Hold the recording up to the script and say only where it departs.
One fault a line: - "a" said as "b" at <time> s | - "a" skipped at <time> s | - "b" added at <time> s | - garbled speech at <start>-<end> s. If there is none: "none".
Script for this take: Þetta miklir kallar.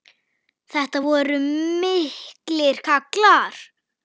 - "voru" added at 1.0 s